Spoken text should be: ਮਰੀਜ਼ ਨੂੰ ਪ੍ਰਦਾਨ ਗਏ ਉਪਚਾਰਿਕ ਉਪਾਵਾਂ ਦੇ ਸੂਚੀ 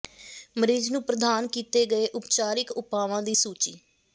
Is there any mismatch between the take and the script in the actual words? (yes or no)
yes